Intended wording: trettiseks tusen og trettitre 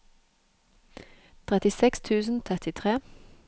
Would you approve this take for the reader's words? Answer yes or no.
yes